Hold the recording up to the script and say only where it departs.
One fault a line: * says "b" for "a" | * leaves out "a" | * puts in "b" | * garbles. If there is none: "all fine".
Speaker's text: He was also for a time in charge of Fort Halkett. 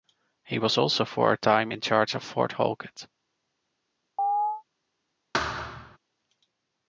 all fine